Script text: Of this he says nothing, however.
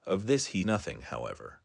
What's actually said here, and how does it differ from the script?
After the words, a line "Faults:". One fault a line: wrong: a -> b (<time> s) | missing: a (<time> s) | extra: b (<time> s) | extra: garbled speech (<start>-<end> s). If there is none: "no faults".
Of this he nothing, however.
Faults:
missing: says (0.6 s)